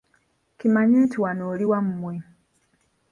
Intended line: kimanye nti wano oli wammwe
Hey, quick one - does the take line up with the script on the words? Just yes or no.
yes